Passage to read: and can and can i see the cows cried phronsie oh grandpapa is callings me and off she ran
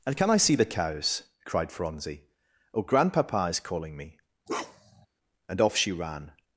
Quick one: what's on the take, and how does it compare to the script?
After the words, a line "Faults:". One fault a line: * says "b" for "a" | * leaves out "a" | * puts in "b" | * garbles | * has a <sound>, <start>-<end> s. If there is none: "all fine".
and can i see the cows cried phronsie oh grandpapa is calling me and off she ran
Faults:
* leaves out "and can"
* says "calling" for "callings"
* has a bark, 4.5-5.1 s